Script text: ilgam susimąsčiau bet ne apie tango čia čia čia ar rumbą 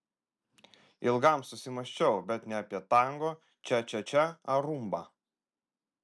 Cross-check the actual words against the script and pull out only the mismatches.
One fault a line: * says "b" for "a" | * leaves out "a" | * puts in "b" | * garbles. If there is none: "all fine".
all fine